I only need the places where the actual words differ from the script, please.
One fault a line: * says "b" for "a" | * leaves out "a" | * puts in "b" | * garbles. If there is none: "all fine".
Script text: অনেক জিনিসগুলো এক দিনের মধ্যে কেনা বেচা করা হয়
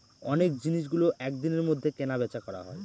all fine